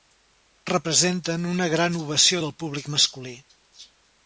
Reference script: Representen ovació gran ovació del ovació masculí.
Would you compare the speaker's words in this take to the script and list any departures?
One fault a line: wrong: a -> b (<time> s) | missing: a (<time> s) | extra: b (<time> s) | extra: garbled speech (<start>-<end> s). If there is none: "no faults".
wrong: ovació -> una (1.5 s)
wrong: ovació -> públic (2.6 s)